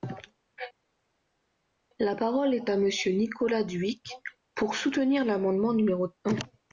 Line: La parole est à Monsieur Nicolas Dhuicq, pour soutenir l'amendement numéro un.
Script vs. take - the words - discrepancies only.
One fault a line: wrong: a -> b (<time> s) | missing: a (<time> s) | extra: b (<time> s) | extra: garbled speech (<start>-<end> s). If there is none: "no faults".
no faults